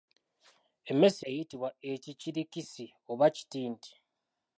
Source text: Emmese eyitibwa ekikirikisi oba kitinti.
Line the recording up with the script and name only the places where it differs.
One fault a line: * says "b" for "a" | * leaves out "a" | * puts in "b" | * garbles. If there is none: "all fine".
all fine